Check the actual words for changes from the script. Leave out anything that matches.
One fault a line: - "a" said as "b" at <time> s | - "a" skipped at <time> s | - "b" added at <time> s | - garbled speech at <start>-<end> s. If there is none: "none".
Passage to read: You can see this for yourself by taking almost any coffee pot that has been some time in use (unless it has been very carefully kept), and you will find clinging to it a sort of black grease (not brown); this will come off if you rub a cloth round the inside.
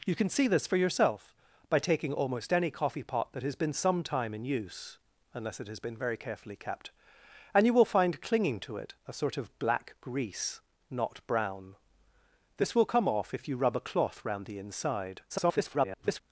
- garbled speech at 15.3-16.2 s